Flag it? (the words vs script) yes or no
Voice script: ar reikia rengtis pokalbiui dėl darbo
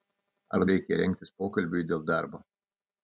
no